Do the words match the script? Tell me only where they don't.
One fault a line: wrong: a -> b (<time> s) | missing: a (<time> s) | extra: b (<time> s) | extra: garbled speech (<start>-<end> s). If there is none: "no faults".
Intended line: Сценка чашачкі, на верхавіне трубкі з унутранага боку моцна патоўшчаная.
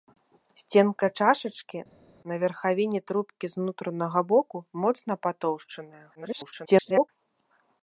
extra: garbled speech (6.1-7.1 s)